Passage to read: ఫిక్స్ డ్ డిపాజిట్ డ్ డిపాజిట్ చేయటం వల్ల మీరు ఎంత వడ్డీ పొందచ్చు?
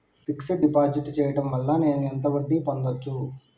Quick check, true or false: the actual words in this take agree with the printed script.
false